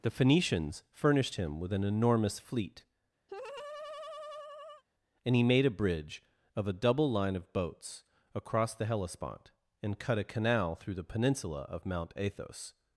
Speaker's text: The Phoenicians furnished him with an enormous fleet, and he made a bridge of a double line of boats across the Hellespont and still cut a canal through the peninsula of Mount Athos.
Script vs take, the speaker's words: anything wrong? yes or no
yes